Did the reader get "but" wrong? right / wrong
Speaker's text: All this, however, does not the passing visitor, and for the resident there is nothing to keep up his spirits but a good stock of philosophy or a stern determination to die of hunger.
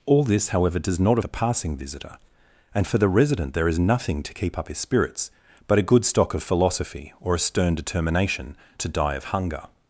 right